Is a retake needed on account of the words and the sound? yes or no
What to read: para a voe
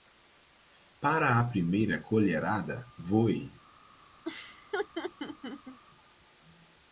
yes